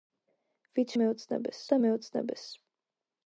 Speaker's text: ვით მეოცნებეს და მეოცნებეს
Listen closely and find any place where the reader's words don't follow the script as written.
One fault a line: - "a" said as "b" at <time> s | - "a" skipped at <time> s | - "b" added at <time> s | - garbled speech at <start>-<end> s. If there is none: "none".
none